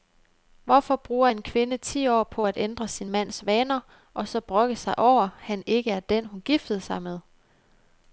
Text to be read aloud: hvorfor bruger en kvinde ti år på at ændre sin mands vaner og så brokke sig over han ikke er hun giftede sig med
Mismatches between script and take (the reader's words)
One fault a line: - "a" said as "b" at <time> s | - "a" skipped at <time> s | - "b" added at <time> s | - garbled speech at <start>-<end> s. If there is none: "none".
- "den" added at 6.0 s